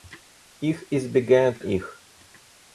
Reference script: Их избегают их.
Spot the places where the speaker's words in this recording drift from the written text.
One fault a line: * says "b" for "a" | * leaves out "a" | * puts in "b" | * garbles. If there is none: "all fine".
all fine